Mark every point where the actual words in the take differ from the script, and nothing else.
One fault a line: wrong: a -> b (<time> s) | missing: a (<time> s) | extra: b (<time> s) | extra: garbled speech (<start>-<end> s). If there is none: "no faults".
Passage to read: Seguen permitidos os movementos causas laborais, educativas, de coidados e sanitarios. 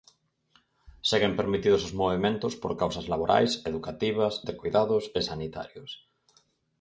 extra: por (2.6 s)